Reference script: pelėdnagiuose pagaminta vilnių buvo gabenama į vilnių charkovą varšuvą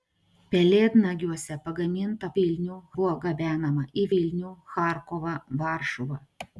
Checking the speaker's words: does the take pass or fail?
pass